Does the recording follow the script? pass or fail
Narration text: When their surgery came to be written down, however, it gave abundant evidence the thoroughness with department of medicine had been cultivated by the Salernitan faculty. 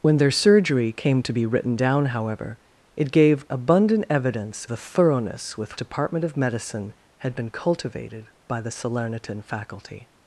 pass